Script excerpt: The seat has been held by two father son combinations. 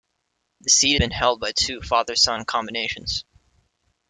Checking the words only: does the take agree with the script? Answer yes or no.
no